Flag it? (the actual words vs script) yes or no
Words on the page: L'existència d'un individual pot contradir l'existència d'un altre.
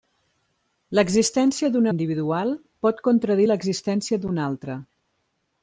no